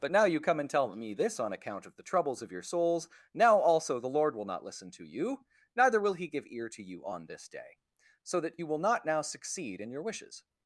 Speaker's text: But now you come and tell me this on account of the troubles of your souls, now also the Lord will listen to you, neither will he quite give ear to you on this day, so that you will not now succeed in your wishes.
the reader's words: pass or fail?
fail